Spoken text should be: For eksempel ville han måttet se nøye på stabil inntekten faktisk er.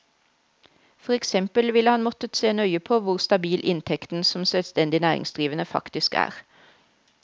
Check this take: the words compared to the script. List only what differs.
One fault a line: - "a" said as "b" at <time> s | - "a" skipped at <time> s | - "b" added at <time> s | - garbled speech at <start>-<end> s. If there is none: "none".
- "hvor" added at 3.0 s
- "som selvstendig næringsdrivende" added at 4.2 s